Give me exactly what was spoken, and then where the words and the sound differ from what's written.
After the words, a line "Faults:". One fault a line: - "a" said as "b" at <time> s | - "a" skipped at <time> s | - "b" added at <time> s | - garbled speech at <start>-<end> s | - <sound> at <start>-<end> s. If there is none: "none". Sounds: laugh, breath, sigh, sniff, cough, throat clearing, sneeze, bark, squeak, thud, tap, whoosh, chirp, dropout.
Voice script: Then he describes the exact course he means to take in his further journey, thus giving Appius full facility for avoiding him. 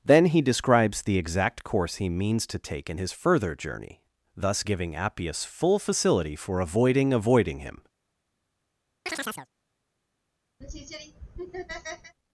Then he describes the exact course he means to take in his further journey, thus giving Appius full facility for avoiding avoiding him.
Faults:
- "avoiding" added at 7.1 s
- chirp at 9.1-9.5 s
- laugh at 10.6-12.2 s